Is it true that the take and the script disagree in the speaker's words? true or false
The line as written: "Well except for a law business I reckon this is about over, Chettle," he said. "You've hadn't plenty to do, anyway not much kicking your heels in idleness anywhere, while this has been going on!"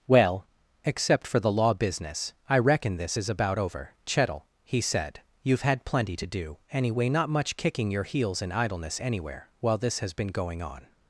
true